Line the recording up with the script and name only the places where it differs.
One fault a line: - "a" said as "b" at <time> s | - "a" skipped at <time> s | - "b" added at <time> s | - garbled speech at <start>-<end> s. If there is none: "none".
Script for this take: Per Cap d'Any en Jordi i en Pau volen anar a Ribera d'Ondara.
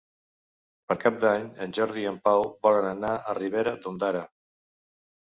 none